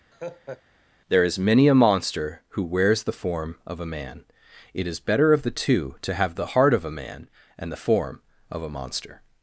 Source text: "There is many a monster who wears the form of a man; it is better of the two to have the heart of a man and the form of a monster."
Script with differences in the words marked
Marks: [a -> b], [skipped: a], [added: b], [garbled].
"There is many a monster who wears the form of a man; it is better of the two to have the heart of a man and the form of a monster."